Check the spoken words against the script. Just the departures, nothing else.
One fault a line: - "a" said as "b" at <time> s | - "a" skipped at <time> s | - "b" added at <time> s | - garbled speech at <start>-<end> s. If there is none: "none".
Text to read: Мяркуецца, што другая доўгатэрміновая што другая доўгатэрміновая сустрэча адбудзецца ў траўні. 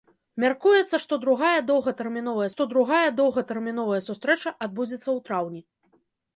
none